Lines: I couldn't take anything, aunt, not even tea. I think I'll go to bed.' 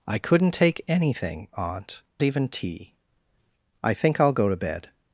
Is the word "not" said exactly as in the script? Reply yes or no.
no